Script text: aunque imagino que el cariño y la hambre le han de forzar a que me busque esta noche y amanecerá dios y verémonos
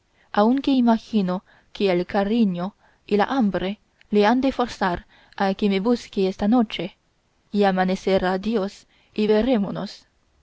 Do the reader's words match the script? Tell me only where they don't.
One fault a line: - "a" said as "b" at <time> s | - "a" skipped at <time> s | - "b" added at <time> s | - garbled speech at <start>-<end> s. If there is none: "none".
none